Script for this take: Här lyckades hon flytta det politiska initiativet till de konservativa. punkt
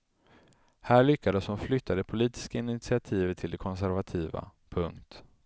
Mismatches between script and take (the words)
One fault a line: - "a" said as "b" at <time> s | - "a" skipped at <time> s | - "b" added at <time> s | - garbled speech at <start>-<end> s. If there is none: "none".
none